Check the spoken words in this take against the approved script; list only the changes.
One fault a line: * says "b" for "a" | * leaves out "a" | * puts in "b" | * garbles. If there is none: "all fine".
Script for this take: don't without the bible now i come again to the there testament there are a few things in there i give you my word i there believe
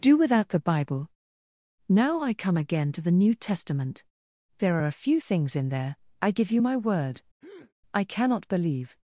* says "do" for "don't"
* says "new" for "there"
* says "cannot" for "there"